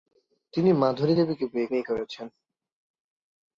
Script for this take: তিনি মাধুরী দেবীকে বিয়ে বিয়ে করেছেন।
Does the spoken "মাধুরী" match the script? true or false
true